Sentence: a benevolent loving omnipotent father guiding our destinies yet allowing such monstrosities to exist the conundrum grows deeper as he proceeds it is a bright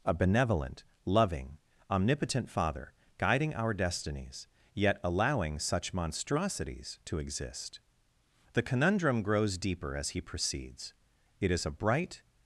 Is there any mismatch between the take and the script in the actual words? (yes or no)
no